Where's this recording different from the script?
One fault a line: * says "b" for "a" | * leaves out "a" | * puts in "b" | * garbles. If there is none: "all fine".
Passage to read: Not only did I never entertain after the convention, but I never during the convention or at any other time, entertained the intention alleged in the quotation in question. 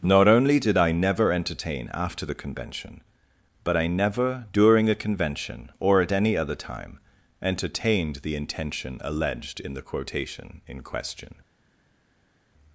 * says "a" for "the"